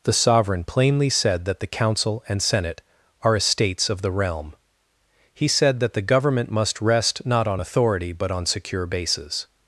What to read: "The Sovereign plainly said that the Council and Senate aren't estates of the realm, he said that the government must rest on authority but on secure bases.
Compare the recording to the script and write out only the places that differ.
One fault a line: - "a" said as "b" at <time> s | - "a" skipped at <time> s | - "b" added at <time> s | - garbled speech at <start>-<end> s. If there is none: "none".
- "aren't" said as "are" at 3.2 s
- "not" added at 7.2 s